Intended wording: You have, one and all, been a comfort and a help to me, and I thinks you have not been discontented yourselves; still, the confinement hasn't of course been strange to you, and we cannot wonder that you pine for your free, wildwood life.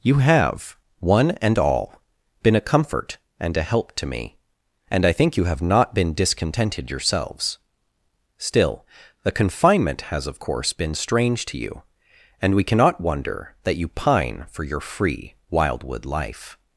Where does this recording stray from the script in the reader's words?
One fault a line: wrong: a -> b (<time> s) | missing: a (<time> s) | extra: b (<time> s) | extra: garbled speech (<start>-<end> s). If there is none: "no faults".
wrong: thinks -> think (5.1 s)
wrong: hasn't -> has (10.0 s)